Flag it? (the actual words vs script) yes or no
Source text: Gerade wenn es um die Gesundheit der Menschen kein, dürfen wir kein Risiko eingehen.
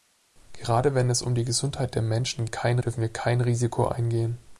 no